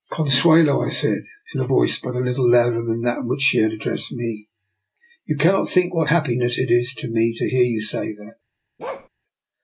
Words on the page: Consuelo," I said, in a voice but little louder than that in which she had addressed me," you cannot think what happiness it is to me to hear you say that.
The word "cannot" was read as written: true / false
true